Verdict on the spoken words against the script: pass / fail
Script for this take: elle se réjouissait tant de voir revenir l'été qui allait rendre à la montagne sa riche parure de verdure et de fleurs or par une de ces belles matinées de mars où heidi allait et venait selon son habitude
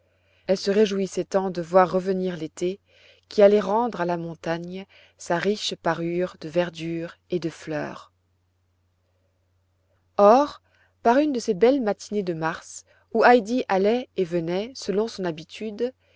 pass